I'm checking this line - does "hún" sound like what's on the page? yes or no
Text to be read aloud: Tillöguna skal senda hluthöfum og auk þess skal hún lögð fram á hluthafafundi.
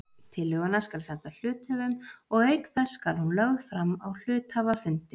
yes